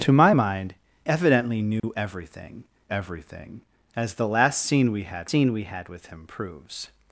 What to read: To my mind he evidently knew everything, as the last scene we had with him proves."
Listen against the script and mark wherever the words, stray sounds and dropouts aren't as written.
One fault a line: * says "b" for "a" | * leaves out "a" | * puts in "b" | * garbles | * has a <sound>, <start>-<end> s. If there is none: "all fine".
* leaves out "he"
* has a dropout, 1.8-1.8 s
* puts in "everything"
* puts in "scene we had"